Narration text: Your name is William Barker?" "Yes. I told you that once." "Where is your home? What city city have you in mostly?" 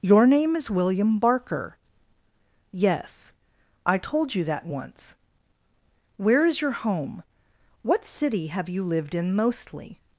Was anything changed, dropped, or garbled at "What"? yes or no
no